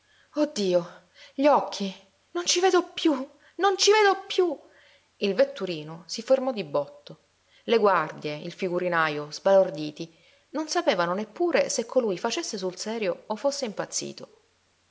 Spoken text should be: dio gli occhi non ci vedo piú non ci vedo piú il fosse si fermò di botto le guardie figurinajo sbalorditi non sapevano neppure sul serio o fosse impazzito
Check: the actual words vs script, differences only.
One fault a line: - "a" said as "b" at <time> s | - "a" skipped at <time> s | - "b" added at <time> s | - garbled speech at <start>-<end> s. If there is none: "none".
- "fosse" said as "vetturino" at 5.3 s
- "il" added at 8.4 s
- "se colui facesse" added at 11.7 s